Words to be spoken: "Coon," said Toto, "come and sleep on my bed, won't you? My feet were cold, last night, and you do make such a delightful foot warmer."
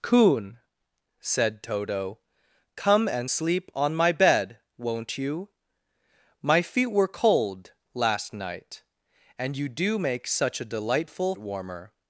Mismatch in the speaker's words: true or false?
true